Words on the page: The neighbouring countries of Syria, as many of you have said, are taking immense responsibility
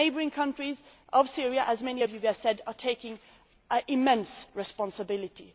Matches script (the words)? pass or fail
pass